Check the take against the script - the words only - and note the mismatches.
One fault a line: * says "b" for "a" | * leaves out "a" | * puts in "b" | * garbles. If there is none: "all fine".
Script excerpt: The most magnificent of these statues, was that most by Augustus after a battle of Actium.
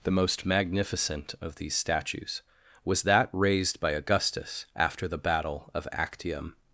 * says "raised" for "most"
* says "the" for "a"